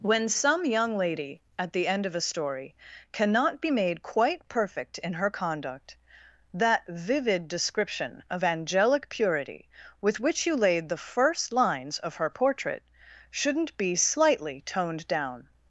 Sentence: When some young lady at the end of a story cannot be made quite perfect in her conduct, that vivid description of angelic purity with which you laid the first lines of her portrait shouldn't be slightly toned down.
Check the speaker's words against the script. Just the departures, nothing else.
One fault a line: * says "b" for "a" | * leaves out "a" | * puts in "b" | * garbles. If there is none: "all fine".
all fine